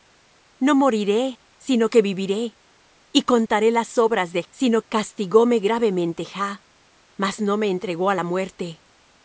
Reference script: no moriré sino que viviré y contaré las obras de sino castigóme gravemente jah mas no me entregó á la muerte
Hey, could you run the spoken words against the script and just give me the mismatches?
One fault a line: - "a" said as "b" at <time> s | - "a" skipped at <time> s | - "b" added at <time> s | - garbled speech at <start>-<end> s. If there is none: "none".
none